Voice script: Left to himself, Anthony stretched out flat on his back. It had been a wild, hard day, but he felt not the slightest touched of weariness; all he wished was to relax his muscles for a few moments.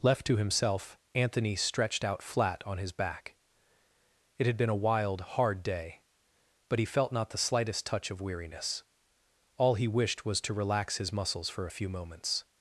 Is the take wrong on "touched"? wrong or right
wrong